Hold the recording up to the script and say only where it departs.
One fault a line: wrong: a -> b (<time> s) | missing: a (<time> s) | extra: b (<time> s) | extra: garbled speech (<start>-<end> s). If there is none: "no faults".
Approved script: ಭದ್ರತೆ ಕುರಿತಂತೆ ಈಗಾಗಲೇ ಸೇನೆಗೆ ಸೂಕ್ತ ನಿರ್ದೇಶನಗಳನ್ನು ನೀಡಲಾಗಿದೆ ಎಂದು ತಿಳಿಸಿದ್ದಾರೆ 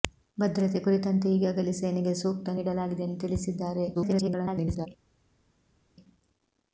missing: ನಿರ್ದೇಶನಗಳನ್ನು (2.5 s)
extra: garbled speech (3.9-4.9 s)